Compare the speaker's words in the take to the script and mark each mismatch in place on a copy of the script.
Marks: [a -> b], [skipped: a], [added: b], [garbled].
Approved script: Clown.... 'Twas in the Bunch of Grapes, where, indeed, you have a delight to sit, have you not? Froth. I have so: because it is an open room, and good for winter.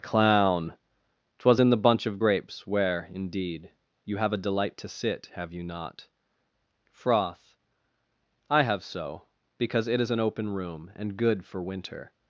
Clown.... 'Twas in the Bunch of Grapes, where, indeed, you have a delight to sit, have you not? Froth. I have so: because it is an open room, and good for winter.